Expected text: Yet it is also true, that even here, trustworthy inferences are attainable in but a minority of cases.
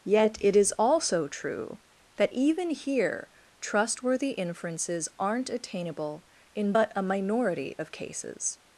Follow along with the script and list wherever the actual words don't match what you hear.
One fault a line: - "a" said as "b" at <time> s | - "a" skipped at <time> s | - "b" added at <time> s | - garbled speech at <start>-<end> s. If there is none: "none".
- "are" said as "aren't" at 5.2 s